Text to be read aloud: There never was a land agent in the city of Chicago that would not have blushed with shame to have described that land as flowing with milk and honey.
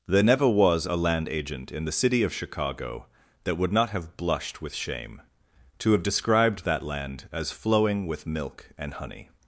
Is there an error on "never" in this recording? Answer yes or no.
no